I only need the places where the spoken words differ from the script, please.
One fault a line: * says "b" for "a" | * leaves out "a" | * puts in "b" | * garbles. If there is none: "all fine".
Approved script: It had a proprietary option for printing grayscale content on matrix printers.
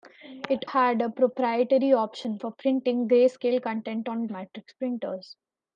all fine